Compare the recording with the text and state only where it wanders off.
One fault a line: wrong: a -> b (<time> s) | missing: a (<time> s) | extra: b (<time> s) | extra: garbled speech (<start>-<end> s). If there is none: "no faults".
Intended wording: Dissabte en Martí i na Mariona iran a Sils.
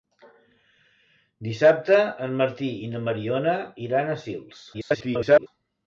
extra: garbled speech (4.7-5.5 s)